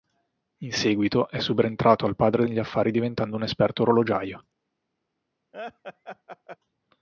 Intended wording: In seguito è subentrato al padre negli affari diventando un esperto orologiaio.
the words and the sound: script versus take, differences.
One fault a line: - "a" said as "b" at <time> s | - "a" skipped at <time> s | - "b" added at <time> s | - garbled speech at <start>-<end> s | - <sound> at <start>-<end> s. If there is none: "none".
- laugh at 5.5-6.6 s